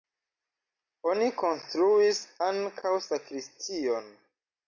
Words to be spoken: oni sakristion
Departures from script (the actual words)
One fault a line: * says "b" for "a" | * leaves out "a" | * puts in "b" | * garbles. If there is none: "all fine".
* puts in "konstruis ankaŭ"